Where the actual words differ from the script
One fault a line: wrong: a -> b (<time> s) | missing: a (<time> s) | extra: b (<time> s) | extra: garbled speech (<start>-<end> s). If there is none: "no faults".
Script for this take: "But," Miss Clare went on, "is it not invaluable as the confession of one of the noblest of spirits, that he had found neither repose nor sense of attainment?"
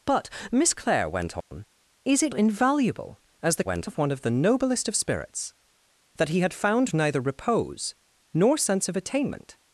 missing: not (2.3 s)
wrong: confession -> went (3.6 s)